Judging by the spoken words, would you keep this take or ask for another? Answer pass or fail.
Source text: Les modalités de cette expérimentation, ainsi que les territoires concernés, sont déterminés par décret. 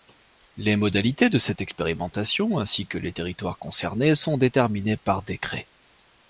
pass